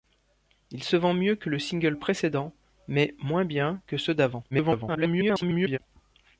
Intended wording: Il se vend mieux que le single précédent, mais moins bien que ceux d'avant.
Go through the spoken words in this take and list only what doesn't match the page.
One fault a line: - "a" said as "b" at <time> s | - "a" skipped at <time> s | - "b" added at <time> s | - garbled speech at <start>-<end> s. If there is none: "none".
- garbled speech at 4.5-5.8 s